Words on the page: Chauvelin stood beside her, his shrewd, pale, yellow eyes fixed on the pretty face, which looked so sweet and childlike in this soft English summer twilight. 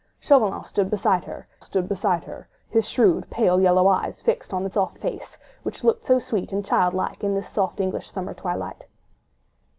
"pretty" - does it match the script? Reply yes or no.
no